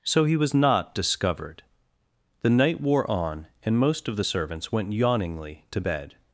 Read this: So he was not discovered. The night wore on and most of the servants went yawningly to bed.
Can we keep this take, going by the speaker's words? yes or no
yes